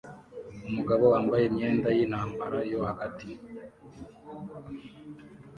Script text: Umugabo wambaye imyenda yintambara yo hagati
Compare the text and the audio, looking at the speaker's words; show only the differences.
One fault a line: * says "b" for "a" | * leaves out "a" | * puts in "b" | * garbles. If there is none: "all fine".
all fine